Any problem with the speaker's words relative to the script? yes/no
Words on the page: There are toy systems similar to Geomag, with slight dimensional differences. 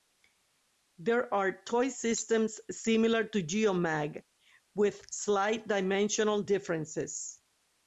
no